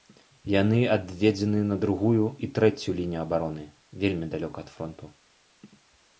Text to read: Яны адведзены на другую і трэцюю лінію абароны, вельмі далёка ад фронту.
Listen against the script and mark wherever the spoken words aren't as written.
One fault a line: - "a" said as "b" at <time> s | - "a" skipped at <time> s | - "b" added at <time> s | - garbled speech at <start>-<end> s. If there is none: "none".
none